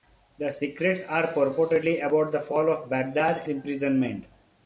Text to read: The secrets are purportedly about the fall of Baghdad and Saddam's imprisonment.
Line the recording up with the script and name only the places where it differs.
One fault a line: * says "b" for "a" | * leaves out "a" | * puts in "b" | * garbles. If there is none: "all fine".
* leaves out "and Saddam's"